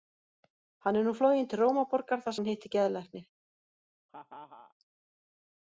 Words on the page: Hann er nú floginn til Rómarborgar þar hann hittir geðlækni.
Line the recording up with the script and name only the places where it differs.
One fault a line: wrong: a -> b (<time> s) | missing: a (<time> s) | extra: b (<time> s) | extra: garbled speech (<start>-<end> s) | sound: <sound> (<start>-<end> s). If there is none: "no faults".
sound: laugh (4.1-4.7 s)